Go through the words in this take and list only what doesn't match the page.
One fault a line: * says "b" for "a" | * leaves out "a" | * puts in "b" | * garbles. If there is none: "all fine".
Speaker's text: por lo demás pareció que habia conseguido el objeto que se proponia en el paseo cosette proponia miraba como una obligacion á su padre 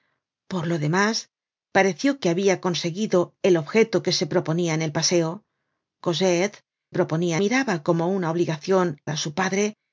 all fine